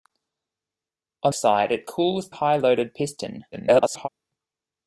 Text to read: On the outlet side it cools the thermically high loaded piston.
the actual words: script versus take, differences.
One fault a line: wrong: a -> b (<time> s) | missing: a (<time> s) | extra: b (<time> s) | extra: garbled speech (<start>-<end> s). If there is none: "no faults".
missing: the outlet (1.3 s)
missing: the thermically (2.3 s)
extra: garbled speech (3.5-4.1 s)